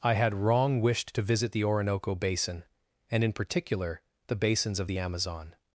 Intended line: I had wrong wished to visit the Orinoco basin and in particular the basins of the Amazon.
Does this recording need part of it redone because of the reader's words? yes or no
no